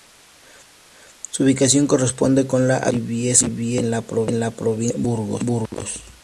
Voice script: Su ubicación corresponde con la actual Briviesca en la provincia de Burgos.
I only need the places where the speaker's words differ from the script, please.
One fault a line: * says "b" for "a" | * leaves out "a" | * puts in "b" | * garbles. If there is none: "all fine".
all fine